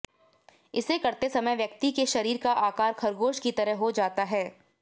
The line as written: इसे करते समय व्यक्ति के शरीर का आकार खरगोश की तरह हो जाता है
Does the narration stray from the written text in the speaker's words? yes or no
no